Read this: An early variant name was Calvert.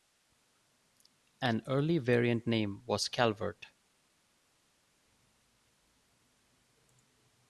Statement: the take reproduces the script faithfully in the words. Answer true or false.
true